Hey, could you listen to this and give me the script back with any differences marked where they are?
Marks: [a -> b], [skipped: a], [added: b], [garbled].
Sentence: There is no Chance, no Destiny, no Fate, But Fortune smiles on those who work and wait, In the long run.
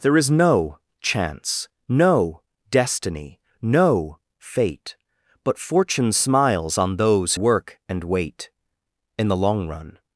There is no Chance, no Destiny, no Fate, But Fortune smiles on those [skipped: who] work and wait, In the long run.